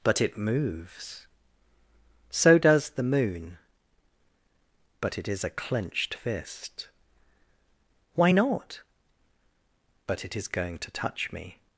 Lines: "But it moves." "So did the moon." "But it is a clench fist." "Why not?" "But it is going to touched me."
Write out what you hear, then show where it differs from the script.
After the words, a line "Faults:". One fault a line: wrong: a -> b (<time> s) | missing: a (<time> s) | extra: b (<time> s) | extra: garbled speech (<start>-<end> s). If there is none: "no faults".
"But it moves." "So does the moon." "But it is a clenched fist." "Why not?" "But it is going to touch me."
Faults:
wrong: did -> does (2.6 s)
wrong: clench -> clenched (5.5 s)
wrong: touched -> touch (10.9 s)